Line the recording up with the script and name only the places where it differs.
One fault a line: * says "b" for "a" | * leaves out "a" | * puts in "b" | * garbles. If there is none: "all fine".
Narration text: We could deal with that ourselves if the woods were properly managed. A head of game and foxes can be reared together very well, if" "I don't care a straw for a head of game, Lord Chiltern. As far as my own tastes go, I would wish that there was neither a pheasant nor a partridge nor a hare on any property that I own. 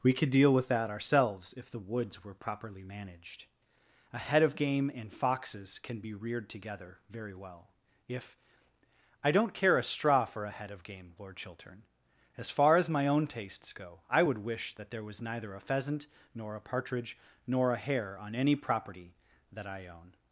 all fine